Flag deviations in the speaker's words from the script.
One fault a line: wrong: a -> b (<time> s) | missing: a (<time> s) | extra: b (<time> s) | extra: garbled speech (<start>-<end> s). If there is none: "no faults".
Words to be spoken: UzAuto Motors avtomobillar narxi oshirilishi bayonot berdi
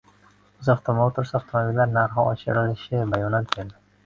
no faults